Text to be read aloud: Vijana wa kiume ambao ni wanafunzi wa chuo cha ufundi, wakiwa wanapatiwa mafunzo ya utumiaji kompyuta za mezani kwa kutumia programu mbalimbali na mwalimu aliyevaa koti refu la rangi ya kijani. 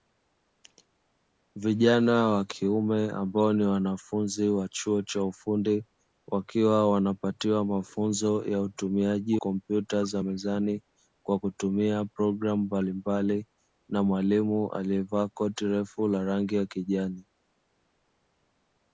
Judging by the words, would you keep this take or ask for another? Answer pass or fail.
pass